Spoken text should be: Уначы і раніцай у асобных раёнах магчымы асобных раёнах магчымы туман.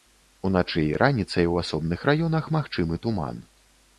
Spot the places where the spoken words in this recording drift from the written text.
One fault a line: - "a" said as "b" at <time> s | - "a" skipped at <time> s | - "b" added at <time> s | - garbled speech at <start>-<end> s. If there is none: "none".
- "асобных раёнах магчымы" skipped at 3.0 s